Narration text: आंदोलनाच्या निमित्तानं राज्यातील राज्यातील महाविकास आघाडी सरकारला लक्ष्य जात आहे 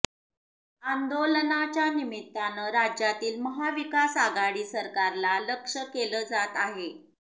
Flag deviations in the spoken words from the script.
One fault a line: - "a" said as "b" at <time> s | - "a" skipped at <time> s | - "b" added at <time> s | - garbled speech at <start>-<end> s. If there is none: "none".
- "राज्यातील" skipped at 3.4 s
- "केलं" added at 5.9 s